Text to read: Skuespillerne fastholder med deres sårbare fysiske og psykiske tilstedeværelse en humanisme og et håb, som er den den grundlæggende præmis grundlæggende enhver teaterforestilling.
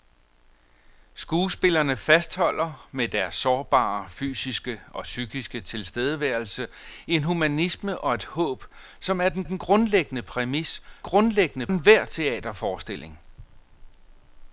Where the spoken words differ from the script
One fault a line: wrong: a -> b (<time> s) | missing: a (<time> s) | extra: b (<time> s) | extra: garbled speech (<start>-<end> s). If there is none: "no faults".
no faults